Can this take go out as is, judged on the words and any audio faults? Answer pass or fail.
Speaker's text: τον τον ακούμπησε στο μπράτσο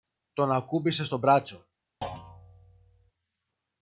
fail